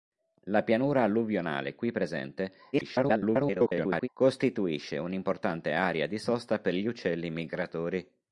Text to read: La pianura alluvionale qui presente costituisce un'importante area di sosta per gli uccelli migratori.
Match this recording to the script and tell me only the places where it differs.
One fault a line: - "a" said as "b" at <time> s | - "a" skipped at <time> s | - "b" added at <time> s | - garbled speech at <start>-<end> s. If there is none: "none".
- garbled speech at 2.7-4.1 s